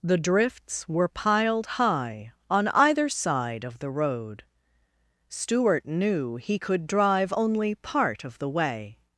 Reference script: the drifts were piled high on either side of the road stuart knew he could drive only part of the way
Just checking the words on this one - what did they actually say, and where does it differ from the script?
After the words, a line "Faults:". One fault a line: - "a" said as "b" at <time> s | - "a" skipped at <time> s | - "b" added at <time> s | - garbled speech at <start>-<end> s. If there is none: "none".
the drifts were piled high on either side of the road stuart knew he could drive only part of the way
Faults:
none